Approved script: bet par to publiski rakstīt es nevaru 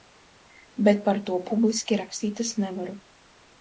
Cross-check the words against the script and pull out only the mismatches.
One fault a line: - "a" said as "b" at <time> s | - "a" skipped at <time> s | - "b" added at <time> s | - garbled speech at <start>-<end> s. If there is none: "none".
none